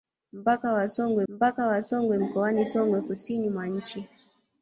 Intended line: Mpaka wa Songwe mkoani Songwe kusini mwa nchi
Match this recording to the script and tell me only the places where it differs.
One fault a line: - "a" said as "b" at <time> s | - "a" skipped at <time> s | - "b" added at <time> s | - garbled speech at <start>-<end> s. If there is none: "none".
- "mpaka wa Songwe" added at 1.3 s